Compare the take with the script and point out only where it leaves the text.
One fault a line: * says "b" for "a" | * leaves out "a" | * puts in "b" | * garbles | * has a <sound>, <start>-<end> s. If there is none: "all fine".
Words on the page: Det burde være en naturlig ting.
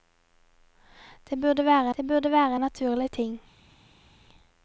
* puts in "det burde være"